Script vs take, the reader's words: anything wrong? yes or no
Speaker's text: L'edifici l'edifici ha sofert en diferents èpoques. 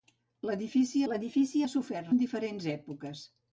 no